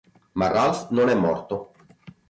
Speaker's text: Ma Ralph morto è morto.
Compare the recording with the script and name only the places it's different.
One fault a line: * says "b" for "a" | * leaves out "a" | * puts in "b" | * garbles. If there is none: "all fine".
* says "non" for "morto"